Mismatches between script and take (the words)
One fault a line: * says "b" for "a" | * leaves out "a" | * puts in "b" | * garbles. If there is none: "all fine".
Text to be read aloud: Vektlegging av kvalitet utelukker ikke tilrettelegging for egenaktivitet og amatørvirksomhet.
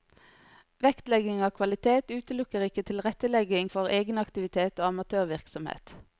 all fine